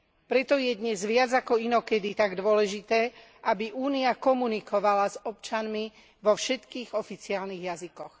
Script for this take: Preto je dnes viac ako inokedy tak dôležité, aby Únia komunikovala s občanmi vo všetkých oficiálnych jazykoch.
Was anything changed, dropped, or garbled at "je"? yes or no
no